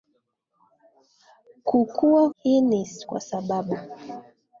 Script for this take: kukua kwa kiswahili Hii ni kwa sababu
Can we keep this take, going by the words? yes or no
no